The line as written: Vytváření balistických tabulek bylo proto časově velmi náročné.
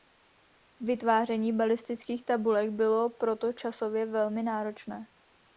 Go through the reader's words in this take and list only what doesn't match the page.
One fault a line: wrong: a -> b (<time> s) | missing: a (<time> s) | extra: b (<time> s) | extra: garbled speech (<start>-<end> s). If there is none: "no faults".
no faults